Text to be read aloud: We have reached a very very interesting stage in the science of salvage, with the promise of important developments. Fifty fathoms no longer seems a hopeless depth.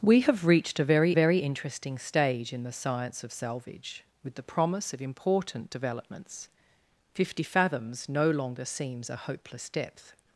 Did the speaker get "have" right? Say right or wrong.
right